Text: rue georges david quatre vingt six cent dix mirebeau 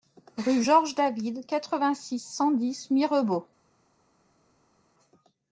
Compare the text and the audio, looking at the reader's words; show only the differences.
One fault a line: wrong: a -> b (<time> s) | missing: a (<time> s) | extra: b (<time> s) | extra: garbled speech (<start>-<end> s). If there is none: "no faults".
no faults